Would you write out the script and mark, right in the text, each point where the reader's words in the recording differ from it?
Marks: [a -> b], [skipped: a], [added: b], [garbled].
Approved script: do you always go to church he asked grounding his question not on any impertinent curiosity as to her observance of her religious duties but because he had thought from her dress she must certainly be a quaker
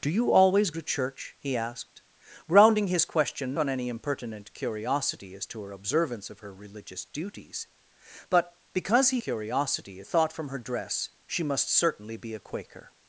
do you always [skipped: go] to church he asked grounding his question [skipped: not] on any impertinent curiosity as to her observance of her religious duties but because he [had -> curiosity] thought from her dress she must certainly be a quaker